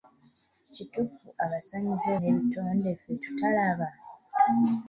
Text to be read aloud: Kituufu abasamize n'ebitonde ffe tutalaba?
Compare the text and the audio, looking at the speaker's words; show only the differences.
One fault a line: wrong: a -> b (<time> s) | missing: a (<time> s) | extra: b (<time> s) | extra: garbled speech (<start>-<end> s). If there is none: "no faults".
no faults